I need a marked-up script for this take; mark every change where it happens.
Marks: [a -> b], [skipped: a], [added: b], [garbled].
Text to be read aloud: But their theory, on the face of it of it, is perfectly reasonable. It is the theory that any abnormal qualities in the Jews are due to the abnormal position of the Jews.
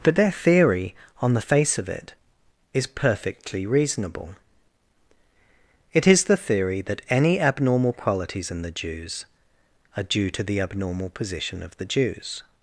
But their theory, on the face of it [skipped: of it,] is perfectly reasonable. It is the theory that any abnormal qualities in the Jews are due to the abnormal position of the Jews.